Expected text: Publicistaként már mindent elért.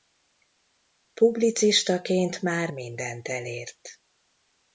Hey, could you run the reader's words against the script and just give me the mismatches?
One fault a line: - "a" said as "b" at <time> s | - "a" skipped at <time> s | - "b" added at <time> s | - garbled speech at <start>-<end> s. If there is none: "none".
none